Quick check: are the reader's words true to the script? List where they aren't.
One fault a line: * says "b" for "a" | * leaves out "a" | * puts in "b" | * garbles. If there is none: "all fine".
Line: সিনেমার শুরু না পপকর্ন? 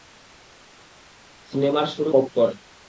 * leaves out "না"